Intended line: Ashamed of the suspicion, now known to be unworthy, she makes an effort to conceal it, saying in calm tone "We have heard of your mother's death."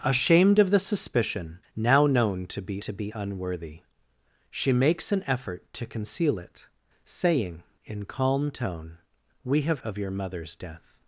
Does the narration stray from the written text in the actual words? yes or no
yes